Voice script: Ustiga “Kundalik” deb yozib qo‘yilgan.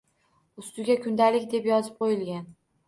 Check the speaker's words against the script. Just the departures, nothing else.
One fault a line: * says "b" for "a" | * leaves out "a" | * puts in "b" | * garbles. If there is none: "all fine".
all fine